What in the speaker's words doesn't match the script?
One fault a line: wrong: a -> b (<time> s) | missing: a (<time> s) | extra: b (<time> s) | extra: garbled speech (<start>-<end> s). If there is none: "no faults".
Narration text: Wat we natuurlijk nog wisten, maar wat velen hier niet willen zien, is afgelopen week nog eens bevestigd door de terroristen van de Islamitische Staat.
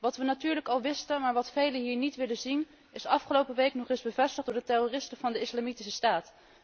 wrong: nog -> al (0.7 s)